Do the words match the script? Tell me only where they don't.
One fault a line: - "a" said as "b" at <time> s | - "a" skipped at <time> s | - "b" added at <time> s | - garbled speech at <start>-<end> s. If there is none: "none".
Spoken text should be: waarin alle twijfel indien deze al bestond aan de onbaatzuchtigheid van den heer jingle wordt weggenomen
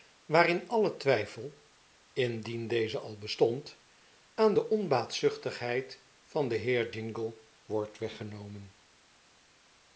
none